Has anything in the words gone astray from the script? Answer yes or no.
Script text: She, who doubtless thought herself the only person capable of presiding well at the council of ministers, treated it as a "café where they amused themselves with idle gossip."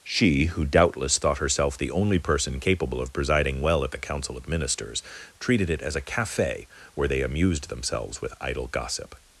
no